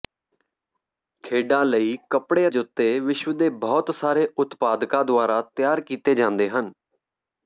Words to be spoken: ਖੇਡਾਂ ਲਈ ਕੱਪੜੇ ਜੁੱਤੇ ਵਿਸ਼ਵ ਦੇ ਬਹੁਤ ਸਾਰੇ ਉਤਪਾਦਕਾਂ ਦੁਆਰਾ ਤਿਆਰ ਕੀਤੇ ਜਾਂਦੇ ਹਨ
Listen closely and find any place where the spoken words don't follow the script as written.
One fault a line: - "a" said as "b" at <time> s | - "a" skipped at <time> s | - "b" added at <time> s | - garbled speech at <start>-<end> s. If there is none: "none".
none